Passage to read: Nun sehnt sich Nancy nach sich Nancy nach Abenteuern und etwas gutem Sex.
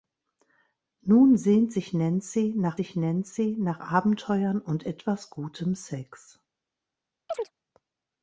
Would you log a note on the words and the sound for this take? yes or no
yes